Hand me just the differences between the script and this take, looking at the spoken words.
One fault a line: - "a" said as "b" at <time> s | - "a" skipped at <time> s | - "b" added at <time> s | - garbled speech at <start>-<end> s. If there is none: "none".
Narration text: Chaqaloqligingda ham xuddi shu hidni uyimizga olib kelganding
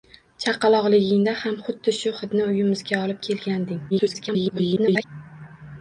- garbled speech at 3.9-5.0 s